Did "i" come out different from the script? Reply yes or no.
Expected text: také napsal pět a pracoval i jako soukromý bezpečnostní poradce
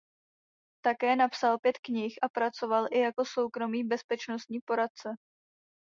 no